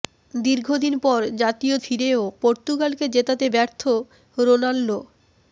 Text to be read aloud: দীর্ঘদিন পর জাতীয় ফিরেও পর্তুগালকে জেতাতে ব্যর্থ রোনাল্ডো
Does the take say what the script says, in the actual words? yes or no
yes